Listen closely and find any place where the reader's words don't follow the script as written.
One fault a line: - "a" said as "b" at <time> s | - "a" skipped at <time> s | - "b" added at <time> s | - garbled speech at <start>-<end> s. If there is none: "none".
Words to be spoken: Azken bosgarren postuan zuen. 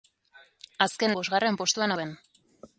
none